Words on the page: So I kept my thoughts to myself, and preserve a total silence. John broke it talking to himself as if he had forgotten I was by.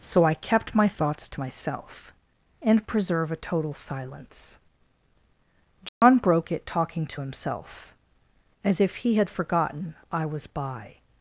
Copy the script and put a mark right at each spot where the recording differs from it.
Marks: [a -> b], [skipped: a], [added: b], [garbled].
So I kept my thoughts to myself, and preserve a total silence. John broke it talking to himself as if he had forgotten I was by.